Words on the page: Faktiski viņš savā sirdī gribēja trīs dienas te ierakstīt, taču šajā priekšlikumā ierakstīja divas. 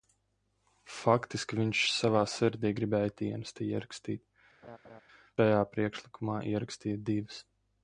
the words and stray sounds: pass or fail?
fail